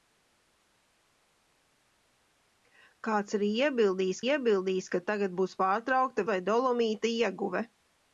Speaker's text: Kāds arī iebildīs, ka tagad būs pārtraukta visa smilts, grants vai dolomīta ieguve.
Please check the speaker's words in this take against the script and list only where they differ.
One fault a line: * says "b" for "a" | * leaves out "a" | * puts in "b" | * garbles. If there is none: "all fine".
* puts in "iebildīs"
* leaves out "visa smilts grants"